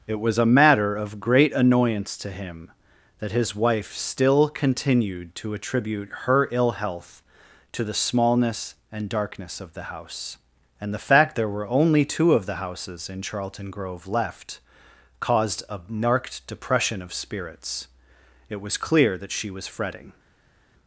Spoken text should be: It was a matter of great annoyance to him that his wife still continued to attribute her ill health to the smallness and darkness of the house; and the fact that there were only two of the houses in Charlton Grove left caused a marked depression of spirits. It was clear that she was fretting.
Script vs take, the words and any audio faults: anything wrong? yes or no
yes